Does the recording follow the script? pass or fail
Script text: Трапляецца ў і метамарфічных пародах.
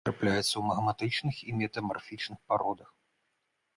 fail